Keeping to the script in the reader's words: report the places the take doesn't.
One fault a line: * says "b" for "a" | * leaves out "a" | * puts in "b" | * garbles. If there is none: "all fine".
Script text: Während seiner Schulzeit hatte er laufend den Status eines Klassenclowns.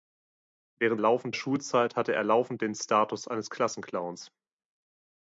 * says "laufend" for "seiner"